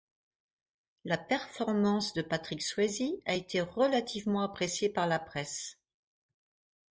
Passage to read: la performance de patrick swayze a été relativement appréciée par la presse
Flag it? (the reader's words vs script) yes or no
no